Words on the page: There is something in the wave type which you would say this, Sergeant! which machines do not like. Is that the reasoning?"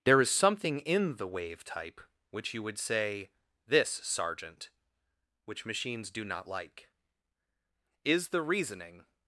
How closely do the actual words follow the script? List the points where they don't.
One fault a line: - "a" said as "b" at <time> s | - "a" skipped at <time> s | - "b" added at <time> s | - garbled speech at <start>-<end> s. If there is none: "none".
- "that" skipped at 8.3 s